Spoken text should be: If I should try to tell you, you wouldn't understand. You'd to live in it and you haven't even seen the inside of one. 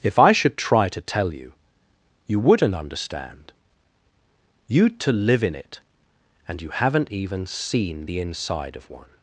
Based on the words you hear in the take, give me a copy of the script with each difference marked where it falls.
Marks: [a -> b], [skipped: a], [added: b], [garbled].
If I should try to tell you, you wouldn't understand. You'd to live in it and you haven't even seen the inside of one.